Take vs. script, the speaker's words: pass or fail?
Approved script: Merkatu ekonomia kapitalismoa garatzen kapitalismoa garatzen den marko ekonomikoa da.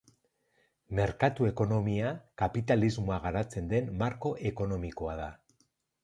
fail